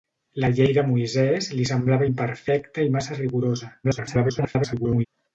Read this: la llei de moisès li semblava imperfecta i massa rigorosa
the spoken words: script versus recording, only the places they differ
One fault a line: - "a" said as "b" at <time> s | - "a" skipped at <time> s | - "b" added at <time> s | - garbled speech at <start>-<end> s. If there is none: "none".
- garbled speech at 3.8-5.1 s